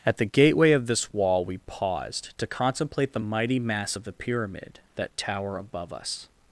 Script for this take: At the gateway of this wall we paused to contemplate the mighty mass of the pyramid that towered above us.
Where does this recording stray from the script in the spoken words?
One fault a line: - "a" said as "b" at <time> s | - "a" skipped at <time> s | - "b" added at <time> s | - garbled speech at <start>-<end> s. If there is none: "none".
- "towered" said as "tower" at 5.2 s